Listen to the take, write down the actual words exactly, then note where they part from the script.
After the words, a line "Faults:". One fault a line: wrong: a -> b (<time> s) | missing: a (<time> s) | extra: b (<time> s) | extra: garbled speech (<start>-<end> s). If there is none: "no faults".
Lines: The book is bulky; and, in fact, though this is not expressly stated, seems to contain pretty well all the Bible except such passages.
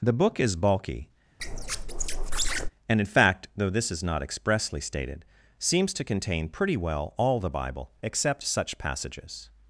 The book is bulky; and, in fact, though this is not expressly stated, seems to contain pretty well all the Bible except such passages.
Faults:
no faults